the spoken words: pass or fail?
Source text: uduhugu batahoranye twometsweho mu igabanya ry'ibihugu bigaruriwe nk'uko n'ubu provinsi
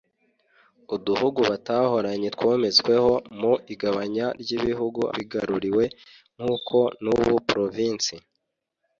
pass